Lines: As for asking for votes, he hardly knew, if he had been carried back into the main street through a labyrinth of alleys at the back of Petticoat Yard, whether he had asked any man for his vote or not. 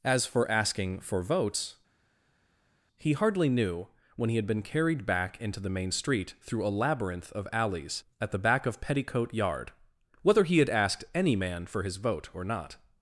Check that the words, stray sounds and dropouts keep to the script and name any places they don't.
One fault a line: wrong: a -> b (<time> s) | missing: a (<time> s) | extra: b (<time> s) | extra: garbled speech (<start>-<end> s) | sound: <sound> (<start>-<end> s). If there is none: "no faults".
wrong: if -> when (4.1 s)